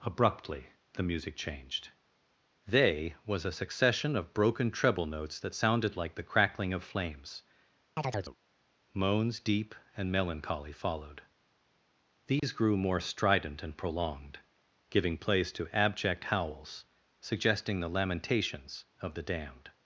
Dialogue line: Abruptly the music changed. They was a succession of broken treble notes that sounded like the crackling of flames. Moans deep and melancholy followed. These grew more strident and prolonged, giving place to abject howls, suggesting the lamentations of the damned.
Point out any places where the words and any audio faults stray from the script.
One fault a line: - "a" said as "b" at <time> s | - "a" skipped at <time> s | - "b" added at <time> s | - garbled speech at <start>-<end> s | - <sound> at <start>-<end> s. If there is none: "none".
- chirp at 8.0-8.4 s
- dropout at 12.4-12.4 s